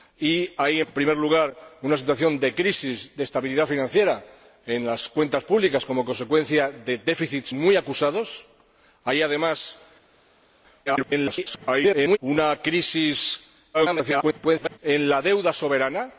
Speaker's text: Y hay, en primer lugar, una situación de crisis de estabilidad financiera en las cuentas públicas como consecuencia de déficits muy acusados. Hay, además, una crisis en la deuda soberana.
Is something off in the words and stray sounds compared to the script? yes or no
yes